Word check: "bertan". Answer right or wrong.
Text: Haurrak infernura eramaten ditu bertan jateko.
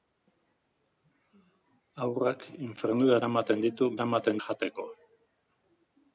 wrong